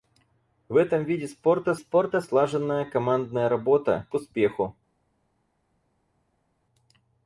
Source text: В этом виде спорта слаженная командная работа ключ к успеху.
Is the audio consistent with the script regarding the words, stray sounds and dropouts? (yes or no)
no